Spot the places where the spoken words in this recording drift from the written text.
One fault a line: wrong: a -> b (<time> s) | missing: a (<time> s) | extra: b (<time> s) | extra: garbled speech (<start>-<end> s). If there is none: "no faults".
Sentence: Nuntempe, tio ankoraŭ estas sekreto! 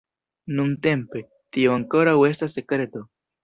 no faults